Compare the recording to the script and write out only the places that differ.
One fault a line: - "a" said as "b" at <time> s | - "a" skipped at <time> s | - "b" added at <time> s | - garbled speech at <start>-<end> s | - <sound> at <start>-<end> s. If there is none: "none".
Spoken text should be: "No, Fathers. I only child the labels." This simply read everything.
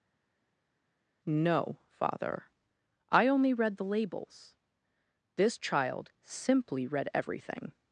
- "Fathers" said as "Father" at 1.9 s
- "child" said as "read" at 3.5 s
- "child" added at 5.6 s